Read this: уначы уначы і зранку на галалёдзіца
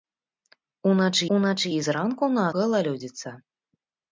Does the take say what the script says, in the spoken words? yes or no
yes